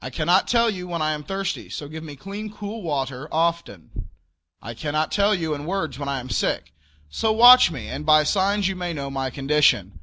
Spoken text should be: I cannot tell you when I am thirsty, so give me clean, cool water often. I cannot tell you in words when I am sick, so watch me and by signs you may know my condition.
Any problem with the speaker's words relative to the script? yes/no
no